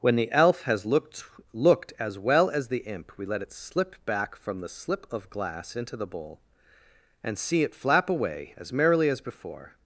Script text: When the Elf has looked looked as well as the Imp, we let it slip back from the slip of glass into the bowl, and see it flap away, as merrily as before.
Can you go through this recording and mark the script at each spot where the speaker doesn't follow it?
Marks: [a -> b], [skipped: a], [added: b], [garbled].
When the Elf has looked looked as well as the Imp, we let it slip back from the slip of glass into the bowl, and see it flap away, as merrily as before.